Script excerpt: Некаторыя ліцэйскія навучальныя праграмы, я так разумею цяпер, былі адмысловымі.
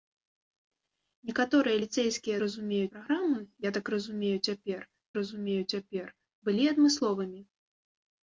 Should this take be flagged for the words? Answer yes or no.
yes